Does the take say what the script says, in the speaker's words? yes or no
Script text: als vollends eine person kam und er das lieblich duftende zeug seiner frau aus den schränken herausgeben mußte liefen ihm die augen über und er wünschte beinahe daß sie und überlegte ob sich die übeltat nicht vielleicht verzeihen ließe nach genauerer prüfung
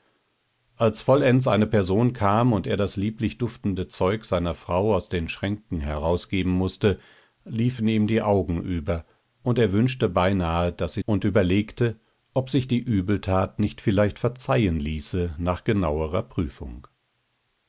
yes